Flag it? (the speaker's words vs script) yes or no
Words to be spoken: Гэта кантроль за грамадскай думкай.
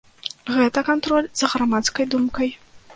no